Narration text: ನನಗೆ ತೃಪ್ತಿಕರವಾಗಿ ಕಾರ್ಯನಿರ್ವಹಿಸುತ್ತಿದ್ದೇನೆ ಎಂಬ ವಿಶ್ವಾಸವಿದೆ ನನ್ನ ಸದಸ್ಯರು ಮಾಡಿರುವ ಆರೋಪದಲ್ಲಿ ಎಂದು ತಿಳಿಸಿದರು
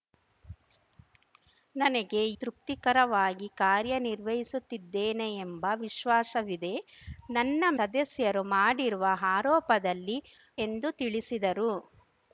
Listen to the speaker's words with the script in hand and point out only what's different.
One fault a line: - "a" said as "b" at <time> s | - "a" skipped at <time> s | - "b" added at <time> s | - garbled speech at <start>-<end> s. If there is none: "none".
none